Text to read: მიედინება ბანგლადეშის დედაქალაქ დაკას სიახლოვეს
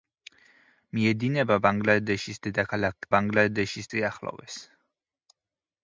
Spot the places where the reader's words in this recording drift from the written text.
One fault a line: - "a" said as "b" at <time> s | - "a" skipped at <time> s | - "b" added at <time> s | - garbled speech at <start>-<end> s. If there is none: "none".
- "დაკას" said as "ბანგლადეშის" at 3.1 s